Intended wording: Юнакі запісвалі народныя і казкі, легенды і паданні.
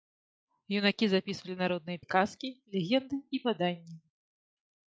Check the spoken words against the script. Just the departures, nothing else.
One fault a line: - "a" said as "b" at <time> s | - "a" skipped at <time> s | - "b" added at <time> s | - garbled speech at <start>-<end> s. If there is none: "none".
none